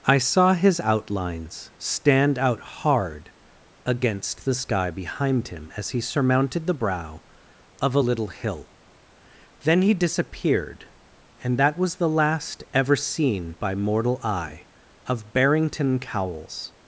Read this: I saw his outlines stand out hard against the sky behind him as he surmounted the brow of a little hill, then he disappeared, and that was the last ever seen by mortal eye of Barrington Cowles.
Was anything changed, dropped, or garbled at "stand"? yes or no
no